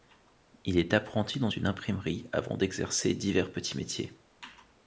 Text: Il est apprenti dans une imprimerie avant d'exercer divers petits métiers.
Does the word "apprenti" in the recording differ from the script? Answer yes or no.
no